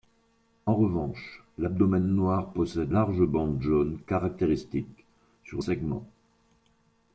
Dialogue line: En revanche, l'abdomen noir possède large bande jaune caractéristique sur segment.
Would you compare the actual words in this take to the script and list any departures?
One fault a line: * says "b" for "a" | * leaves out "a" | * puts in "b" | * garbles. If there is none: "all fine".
all fine